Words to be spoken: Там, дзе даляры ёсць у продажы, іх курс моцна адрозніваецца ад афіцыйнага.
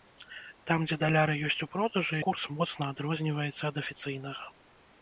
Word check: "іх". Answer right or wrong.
wrong